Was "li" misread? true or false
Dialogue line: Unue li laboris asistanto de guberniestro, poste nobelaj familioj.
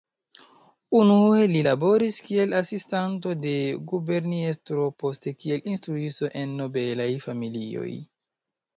false